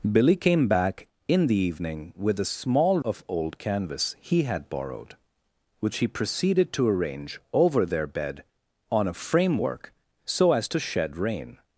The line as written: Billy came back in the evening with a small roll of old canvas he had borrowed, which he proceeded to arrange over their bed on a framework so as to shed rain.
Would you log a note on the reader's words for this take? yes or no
yes